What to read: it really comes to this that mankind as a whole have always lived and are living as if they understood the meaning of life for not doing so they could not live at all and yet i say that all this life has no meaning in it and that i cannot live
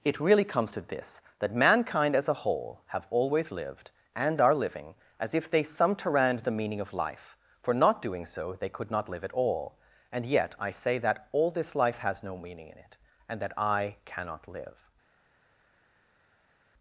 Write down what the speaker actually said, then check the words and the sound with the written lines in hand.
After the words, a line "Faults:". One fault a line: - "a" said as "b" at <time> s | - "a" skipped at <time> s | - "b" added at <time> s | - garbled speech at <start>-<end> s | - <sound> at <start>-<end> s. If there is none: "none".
it really comes to this that mankind as a whole have always lived and are living as if they sumterand the meaning of life for not doing so they could not live at all and yet i say that all this life has no meaning in it and that i cannot live
Faults:
- "understood" said as "sumterand" at 5.6 s